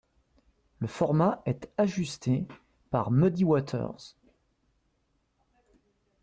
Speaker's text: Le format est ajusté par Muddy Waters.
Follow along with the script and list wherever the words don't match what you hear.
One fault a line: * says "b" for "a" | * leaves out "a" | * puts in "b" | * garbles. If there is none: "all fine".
all fine